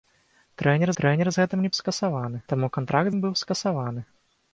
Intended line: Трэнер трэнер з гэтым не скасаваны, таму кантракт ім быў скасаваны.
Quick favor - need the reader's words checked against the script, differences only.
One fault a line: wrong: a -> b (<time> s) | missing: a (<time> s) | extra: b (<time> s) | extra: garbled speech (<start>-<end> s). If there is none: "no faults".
no faults